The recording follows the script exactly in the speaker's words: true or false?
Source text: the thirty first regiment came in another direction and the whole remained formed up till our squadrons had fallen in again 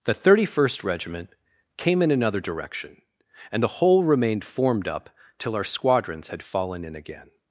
true